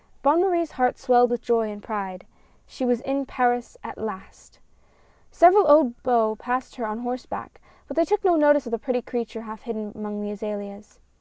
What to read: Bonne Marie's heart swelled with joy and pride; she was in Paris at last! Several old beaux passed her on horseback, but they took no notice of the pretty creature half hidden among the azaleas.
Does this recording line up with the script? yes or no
yes